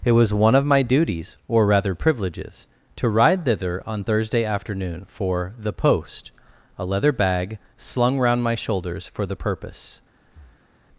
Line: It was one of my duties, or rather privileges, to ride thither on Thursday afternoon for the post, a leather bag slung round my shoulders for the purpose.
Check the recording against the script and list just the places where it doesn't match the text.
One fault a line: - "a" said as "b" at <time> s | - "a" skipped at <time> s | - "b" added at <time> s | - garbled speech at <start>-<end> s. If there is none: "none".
none